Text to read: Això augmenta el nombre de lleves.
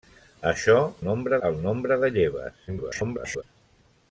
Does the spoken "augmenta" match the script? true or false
false